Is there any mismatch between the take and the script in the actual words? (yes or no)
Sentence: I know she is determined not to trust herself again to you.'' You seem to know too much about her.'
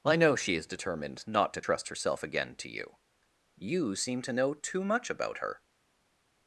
no